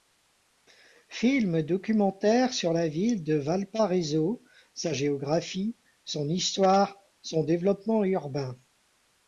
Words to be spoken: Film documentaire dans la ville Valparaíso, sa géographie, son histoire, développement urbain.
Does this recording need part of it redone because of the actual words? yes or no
yes